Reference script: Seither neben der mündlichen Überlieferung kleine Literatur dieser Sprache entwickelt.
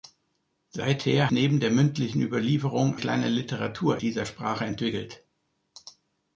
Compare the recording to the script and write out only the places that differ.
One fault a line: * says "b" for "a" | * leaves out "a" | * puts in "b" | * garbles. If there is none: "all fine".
all fine